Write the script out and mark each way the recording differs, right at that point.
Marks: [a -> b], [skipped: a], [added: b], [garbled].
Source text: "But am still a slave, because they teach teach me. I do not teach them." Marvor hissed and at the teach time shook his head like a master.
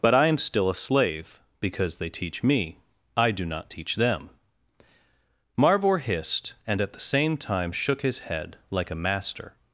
"But [added: I] am still a slave, because they teach [skipped: teach] me. I do not teach them." Marvor hissed and at the [teach -> same] time shook his head like a master.